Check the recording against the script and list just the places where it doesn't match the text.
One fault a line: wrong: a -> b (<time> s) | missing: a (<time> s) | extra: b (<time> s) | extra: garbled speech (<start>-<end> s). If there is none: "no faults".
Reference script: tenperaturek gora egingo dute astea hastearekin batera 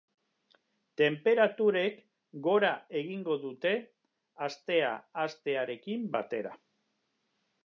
no faults